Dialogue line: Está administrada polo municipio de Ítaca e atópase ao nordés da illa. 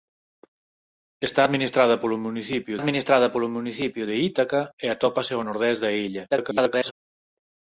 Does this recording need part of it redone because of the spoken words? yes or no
yes